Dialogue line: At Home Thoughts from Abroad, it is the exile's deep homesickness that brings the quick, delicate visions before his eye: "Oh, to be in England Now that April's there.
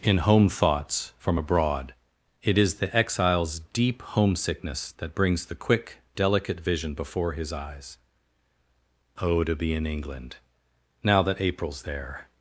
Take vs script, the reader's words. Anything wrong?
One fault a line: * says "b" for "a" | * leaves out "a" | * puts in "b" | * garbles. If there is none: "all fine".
* says "In" for "At"
* says "vision" for "visions"
* says "eyes" for "eye"